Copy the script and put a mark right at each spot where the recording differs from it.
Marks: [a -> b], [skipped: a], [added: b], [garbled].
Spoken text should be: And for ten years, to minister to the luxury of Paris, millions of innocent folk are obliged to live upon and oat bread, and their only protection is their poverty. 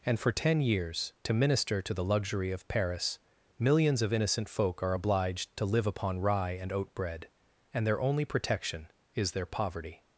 And for ten years, to minister to the luxury of Paris, millions of innocent folk are obliged to live upon [added: rye] and oat bread, and their only protection is their poverty.